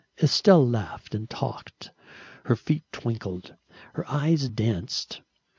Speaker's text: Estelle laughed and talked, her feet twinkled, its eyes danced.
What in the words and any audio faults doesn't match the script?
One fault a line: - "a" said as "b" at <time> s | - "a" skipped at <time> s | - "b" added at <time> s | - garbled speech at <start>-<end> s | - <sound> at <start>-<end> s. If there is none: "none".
- "its" said as "her" at 3.9 s